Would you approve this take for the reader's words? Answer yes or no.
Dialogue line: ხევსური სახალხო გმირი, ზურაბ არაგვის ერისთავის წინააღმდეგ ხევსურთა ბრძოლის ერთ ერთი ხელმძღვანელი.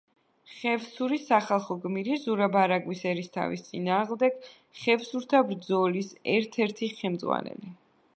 yes